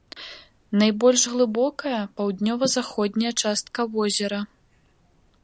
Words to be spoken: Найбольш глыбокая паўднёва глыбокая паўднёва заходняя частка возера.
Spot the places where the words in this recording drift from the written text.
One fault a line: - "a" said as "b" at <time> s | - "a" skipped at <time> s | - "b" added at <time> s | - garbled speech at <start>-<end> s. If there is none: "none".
- "глыбокая паўднёва" skipped at 2.7 s